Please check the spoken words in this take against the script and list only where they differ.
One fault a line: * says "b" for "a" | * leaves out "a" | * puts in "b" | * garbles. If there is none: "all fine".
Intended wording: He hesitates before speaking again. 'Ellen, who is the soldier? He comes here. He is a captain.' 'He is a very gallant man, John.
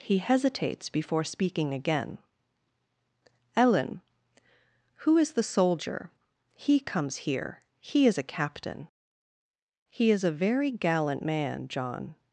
all fine